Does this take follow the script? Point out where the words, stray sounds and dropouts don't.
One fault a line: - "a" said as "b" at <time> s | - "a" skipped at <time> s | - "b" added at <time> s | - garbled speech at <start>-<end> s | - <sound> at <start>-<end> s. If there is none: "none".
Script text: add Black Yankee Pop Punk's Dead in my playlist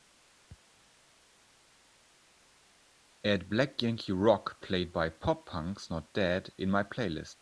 - "Rock played by" added at 4.1 s
- "Not" added at 5.9 s